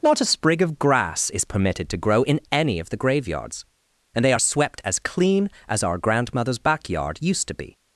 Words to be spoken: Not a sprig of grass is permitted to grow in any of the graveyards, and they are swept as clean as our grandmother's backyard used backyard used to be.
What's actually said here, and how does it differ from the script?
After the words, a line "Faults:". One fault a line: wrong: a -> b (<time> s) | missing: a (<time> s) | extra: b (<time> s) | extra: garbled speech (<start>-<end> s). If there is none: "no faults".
Not a sprig of grass is permitted to grow in any of the graveyards, and they are swept as clean as our grandmother's backyard used to be.
Faults:
missing: backyard used (7.5 s)